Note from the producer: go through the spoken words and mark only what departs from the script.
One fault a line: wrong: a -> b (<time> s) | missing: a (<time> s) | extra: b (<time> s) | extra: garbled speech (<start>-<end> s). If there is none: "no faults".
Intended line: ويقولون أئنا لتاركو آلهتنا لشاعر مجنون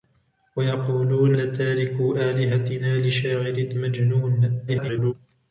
missing: أئنا (1.4 s)
extra: garbled speech (4.7-5.1 s)